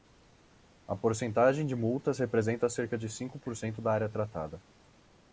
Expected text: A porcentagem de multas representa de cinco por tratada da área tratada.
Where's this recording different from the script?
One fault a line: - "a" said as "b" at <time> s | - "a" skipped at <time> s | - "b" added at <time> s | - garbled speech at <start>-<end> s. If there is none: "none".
- "cerca" added at 2.7 s
- "tratada" said as "cento" at 3.5 s